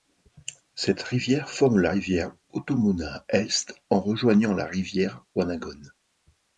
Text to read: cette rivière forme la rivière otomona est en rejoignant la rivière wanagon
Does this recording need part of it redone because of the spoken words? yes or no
no